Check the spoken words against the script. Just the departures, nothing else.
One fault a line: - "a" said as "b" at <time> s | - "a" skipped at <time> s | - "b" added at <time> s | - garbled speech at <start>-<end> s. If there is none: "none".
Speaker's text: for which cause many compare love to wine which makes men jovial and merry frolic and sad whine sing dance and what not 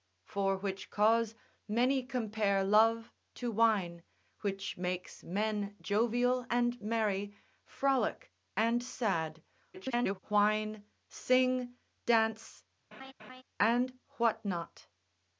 - garbled speech at 9.7-10.2 s